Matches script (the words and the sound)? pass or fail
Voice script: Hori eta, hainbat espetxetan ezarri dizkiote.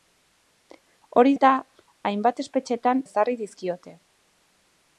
pass